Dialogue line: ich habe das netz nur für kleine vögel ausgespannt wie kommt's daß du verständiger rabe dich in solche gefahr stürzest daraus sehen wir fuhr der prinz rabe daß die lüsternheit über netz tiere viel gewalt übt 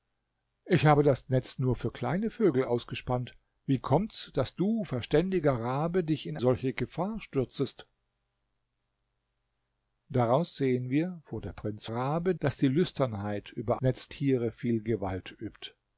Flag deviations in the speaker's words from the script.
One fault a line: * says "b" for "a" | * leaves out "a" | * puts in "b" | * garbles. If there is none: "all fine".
all fine